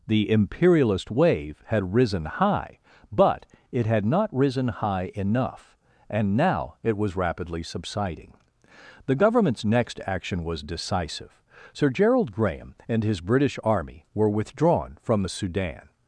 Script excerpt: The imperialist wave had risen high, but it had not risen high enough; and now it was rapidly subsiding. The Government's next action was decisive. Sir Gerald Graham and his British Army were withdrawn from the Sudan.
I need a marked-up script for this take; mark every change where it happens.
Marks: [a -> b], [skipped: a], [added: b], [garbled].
The imperialist wave had risen high, but it had not risen high enough; and now it was rapidly subsiding. The Government's next action was decisive. Sir Gerald Graham and his British Army were withdrawn from the Sudan.